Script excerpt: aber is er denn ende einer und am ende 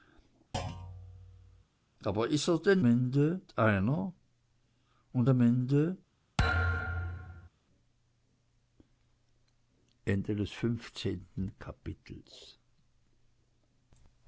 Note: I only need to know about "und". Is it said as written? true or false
true